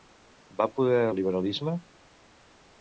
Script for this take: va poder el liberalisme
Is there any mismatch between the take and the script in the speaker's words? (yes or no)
no